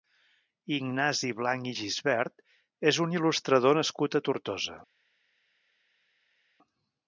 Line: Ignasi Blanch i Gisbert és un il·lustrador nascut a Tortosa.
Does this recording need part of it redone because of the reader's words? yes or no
no